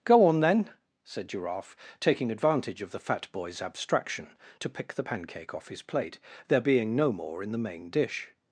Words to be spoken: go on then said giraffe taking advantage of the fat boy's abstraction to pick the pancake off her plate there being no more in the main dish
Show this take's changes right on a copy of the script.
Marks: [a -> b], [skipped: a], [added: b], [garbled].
go on then said giraffe taking advantage of the fat boy's abstraction to pick the pancake off [her -> his] plate there being no more in the main dish